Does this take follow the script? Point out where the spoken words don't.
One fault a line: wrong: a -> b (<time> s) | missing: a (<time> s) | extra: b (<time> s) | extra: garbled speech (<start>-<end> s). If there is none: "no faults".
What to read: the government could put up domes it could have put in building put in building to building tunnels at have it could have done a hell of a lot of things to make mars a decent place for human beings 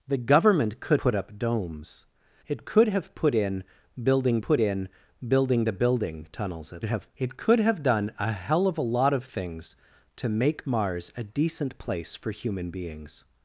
no faults